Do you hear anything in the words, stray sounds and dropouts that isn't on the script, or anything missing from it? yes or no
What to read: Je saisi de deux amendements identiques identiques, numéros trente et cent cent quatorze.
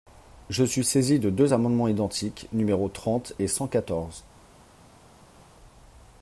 yes